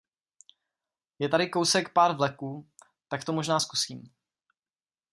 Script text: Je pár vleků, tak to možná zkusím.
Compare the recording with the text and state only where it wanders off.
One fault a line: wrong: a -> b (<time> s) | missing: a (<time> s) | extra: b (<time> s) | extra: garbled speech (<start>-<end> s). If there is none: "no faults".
extra: tady kousek (1.3 s)